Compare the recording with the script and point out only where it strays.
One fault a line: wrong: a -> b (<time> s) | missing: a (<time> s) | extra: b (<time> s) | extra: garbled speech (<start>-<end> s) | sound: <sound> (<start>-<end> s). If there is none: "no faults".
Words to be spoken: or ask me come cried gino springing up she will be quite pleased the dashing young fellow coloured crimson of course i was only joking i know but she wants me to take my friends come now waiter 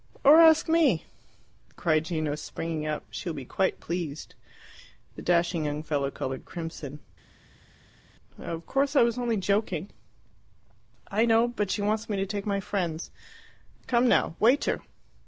missing: come (1.1 s)